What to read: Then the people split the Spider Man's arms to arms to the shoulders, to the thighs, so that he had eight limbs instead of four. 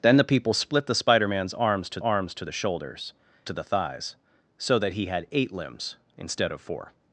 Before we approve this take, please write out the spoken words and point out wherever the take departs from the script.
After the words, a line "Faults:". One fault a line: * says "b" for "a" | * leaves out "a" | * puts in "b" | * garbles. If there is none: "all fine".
Then the people split the Spider Man's arms to arms to the shoulders, to the thighs, so that he had eight limbs instead of four.
Faults:
all fine